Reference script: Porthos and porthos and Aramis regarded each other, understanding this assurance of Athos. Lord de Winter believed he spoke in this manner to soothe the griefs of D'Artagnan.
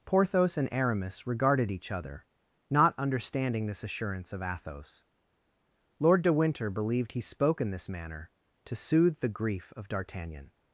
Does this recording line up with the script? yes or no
no